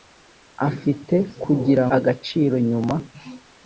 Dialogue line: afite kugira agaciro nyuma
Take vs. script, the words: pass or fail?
pass